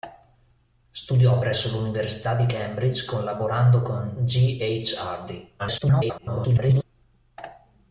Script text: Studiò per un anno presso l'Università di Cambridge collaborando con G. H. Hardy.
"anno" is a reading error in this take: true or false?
true